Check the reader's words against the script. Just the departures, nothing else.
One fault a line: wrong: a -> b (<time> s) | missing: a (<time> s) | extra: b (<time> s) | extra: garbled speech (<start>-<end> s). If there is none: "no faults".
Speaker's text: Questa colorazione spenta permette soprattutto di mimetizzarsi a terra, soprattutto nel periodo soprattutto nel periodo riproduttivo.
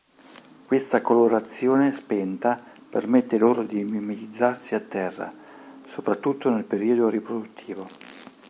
wrong: soprattutto -> loro (3.4 s)
missing: soprattutto nel periodo (7.1 s)